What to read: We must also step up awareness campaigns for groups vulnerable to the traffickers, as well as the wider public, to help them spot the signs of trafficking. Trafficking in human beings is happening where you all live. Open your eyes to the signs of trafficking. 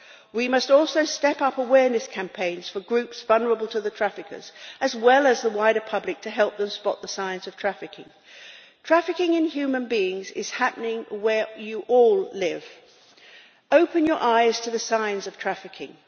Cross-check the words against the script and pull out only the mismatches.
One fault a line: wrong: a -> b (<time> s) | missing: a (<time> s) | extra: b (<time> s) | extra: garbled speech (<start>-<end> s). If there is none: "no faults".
no faults